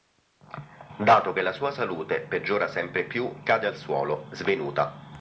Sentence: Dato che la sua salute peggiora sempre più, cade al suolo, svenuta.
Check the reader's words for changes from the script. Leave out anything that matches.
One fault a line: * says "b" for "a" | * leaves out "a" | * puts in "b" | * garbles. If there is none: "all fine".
all fine